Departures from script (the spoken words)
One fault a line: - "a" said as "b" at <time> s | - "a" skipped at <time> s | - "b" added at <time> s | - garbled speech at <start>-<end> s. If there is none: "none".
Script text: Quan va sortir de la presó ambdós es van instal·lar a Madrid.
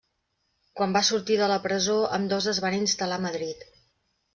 none